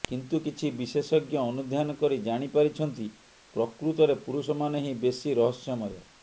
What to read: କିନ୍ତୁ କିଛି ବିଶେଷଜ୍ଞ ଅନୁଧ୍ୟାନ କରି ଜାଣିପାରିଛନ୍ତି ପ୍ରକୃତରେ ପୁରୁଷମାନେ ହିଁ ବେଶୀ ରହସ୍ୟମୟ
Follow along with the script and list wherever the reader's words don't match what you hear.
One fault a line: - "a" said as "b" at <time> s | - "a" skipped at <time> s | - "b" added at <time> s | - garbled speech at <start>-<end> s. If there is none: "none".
none